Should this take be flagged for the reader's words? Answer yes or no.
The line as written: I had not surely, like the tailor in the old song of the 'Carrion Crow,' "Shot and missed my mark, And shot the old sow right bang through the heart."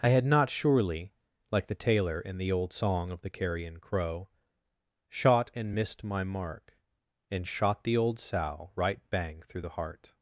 no